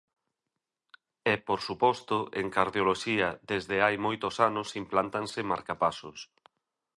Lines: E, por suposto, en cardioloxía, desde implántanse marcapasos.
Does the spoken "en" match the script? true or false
true